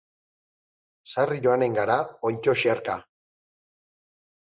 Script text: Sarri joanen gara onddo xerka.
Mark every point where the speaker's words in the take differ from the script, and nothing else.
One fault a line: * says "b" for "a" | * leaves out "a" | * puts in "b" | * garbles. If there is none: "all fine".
all fine